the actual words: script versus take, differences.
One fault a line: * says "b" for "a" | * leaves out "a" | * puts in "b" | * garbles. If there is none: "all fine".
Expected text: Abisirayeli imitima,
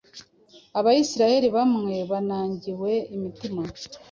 * puts in "bamwe banangiwe"